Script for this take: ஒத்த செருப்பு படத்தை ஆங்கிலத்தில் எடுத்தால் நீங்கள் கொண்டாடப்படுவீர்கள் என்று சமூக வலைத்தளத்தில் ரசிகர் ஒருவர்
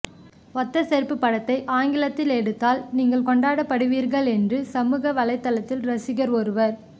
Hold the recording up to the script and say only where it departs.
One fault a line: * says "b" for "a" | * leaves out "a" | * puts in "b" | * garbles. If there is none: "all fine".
all fine